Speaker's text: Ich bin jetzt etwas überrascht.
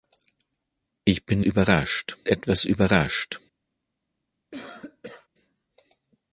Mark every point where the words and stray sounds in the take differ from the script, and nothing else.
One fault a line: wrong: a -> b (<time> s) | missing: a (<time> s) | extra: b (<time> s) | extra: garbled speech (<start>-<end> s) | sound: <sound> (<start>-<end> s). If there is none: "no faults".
wrong: jetzt -> überrascht (1.4 s)
sound: cough (4.5-5.3 s)